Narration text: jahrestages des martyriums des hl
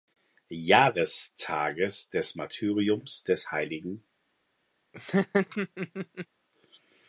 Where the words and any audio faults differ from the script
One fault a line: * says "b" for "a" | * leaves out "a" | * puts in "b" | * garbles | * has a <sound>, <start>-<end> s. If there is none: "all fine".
* has a laugh, 4.9-6.3 s